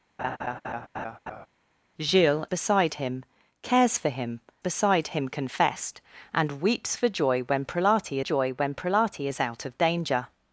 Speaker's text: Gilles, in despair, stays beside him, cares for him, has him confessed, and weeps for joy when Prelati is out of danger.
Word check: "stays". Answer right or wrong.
wrong